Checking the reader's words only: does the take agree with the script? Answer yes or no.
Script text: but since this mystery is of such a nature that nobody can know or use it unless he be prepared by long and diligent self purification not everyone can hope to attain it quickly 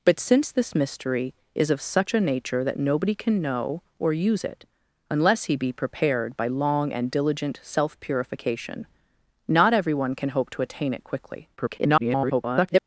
no